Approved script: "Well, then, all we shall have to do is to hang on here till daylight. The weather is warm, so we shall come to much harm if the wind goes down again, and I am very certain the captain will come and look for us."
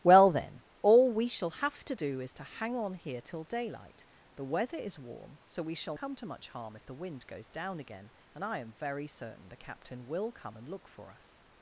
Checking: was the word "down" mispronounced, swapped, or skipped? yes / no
no